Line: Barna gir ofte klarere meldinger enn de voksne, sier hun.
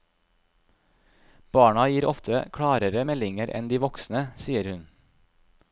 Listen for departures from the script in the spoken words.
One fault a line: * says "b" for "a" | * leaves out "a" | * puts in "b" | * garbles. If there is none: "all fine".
all fine